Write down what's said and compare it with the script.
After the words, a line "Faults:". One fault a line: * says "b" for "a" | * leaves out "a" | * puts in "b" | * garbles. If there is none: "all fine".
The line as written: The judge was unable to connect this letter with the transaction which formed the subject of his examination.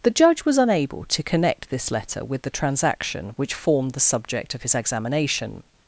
The judge was unable to connect this letter with the transaction which formed the subject of his examination.
Faults:
all fine